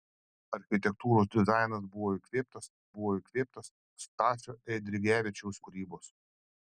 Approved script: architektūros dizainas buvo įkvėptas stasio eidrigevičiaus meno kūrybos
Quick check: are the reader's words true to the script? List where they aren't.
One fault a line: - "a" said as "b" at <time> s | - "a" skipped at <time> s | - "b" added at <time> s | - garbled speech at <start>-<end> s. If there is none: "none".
- "buvo įkvėptas" added at 3.0 s
- "meno" skipped at 5.6 s